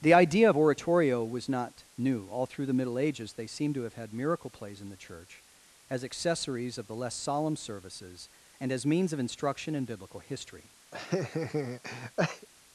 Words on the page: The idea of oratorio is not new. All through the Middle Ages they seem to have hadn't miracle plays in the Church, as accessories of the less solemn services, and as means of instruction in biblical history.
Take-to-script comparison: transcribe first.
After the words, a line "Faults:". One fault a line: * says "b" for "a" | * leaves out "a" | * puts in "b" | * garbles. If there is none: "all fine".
The idea of oratorio was not new. All through the Middle Ages they seem to have had miracle plays in the Church, as accessories of the less solemn services, and as means of instruction in biblical history.
Faults:
* says "was" for "is"
* says "had" for "hadn't"